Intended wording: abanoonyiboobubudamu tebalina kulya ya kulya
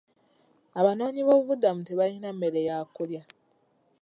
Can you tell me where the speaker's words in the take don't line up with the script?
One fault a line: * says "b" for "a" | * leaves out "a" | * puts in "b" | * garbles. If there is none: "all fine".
* says "mmere" for "kulya"